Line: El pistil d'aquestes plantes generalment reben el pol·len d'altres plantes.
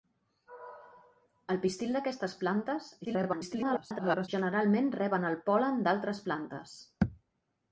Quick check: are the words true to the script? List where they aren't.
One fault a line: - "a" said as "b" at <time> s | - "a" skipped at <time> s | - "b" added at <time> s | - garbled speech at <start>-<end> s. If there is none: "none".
- garbled speech at 3.0-4.3 s